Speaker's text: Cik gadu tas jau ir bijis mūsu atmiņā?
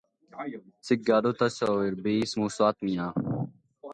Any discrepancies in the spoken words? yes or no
no